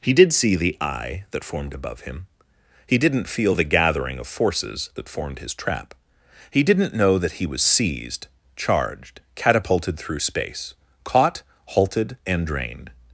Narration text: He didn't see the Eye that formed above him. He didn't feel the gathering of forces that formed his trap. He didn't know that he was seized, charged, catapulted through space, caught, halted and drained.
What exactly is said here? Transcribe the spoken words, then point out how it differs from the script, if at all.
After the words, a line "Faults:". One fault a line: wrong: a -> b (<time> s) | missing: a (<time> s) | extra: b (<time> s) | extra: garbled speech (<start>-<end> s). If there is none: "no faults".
He did see the Eye that formed above him. He didn't feel the gathering of forces that formed his trap. He didn't know that he was seized, charged, catapulted through space, caught, halted and drained.
Faults:
wrong: didn't -> did (0.1 s)